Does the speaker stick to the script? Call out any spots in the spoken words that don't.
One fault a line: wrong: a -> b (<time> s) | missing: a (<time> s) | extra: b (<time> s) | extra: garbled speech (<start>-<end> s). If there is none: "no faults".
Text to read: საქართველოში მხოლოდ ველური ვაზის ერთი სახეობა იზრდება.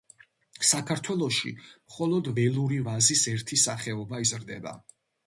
no faults